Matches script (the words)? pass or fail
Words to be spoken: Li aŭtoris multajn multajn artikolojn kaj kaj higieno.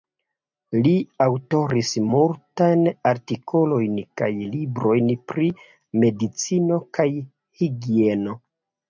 fail